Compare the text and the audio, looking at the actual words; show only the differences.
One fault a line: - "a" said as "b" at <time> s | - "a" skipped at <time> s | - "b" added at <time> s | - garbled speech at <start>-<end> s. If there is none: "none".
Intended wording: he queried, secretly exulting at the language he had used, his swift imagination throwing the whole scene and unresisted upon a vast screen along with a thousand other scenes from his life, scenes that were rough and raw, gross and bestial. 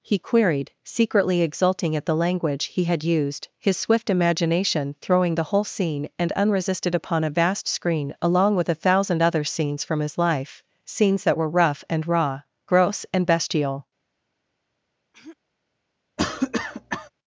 none